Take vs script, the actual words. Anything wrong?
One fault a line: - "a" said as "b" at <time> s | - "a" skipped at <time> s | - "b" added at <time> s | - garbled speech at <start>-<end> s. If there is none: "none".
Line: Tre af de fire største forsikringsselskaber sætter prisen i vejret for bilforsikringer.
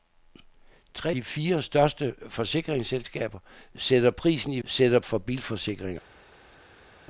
- "af" skipped at 1.1 s
- "vejret" said as "sætter" at 4.6 s